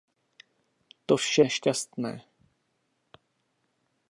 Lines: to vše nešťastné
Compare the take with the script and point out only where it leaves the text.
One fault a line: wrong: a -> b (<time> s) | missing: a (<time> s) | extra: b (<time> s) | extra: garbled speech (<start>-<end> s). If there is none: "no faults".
no faults